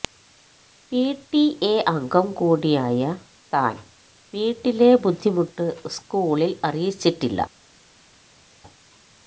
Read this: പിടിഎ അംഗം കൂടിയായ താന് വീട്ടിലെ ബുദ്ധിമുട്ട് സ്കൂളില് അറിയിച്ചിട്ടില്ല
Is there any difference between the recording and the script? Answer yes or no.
no